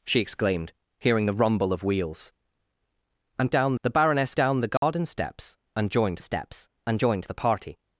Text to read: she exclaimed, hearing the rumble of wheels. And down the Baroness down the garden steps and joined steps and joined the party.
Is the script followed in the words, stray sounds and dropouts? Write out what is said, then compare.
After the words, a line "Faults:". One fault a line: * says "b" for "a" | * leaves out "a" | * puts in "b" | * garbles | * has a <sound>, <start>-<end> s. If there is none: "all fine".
she exclaimed, hearing the rumble of wheels. And down the Baroness down the garden steps and joined steps and joined the party.
Faults:
* has a dropout, 4.8-4.8 s